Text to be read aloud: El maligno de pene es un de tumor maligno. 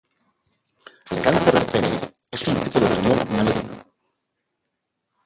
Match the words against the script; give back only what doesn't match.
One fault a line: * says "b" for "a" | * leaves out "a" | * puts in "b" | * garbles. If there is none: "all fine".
* says "cáncer" for "maligno"
* puts in "tipo"